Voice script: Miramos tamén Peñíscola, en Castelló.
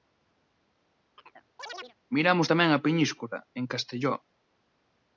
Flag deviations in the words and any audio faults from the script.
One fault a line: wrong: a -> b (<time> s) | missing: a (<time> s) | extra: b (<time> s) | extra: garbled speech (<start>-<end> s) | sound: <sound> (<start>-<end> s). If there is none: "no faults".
sound: chirp (1.2-1.9 s)
extra: a (2.7 s)